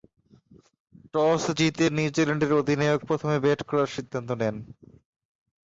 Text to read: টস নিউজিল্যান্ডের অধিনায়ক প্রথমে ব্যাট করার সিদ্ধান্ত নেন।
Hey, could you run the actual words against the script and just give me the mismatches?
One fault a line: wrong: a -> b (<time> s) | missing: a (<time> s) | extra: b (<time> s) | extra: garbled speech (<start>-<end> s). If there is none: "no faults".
extra: জিতে (1.6 s)